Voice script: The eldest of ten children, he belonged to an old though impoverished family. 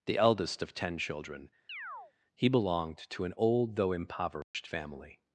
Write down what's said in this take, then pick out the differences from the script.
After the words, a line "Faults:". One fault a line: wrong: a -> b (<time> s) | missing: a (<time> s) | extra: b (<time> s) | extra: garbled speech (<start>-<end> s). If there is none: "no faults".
The eldest of ten children, he belonged to an old though impoverished family.
Faults:
no faults